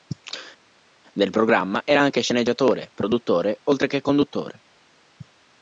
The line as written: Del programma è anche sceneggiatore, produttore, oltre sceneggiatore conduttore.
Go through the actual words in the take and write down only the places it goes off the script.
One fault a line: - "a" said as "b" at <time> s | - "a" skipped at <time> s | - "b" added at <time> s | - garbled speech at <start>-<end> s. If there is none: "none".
- "è" said as "era" at 1.8 s
- "sceneggiatore" said as "che" at 3.9 s